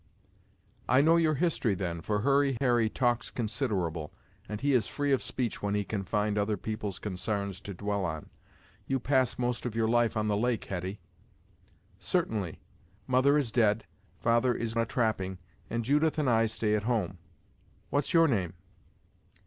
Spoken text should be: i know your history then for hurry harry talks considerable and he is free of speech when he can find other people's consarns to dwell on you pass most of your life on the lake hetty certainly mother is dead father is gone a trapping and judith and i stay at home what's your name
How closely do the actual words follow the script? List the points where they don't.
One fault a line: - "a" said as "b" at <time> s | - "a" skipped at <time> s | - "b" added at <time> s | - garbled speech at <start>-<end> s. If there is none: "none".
- "gone" skipped at 14.7 s